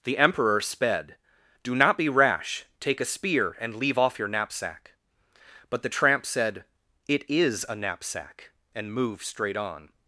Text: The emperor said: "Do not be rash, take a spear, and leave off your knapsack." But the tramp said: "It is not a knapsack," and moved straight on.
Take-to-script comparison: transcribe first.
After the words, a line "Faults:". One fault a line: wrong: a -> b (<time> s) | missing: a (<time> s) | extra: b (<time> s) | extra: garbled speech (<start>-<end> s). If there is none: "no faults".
The emperor sped: "Do not be rash, take a spear, and leave off your knapsack." But the tramp said: "It is a knapsack," and moved straight on.
Faults:
wrong: said -> sped (0.6 s)
missing: not (7.6 s)